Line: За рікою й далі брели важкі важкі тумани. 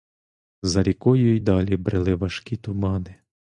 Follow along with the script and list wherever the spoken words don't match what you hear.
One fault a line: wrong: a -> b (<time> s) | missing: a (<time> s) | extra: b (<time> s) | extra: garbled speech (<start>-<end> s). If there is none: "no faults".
missing: важкі (2.6 s)